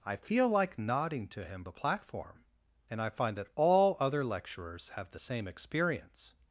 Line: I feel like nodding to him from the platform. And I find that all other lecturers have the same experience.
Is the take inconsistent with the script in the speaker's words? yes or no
yes